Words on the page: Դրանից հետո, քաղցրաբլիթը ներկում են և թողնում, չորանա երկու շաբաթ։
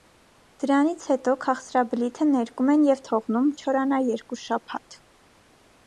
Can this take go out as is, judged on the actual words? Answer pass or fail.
pass